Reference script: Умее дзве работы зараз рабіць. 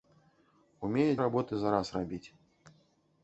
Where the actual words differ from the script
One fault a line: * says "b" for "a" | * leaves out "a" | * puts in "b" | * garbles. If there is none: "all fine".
* leaves out "дзве"